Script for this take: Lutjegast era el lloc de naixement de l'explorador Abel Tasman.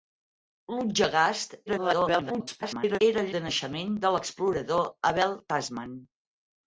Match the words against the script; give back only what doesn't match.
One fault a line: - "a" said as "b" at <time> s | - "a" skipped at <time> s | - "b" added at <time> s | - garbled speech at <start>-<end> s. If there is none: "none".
- garbled speech at 1.7-3.0 s
- "lloc" skipped at 3.3 s